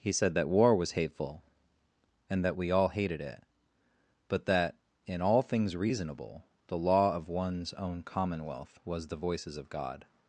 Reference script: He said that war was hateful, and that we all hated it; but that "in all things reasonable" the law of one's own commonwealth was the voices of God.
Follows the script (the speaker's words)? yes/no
yes